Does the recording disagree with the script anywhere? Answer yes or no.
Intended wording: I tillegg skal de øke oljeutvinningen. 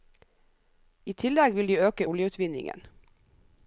yes